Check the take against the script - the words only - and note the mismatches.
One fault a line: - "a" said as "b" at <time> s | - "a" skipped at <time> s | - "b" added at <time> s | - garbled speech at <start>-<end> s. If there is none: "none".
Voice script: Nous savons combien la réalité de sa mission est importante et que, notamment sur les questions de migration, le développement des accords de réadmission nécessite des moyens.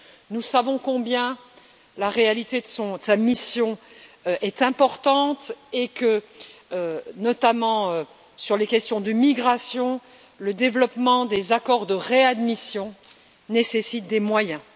none